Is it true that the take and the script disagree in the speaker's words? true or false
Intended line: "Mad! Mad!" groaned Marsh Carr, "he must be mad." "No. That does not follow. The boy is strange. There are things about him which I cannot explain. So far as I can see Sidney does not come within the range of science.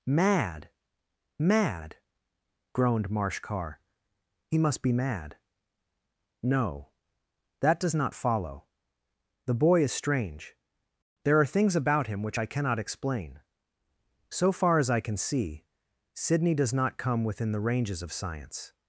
true